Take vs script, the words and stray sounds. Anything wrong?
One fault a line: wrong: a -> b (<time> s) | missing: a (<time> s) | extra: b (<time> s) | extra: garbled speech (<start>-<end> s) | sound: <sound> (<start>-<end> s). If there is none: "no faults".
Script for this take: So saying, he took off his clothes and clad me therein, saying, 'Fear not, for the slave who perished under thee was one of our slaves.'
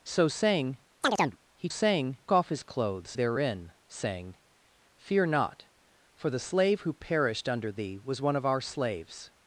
sound: chirp (1.0-1.4 s)
wrong: took -> saying (1.7 s)
missing: and clad me (3.2 s)